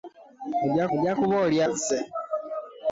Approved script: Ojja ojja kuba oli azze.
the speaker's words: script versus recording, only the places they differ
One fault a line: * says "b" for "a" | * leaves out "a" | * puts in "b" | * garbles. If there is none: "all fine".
all fine